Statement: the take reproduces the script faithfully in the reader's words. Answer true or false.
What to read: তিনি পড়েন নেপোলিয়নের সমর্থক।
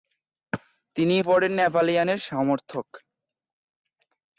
true